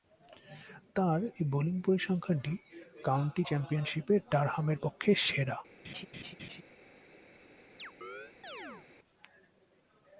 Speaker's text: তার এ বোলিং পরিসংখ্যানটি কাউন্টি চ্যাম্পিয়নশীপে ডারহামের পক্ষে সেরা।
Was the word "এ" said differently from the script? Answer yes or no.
no